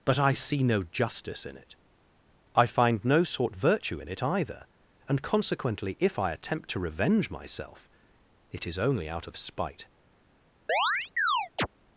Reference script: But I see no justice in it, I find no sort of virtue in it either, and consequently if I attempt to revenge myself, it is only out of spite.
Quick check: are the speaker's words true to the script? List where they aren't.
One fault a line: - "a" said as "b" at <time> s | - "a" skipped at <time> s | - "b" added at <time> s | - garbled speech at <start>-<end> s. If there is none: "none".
- "of" skipped at 3.5 s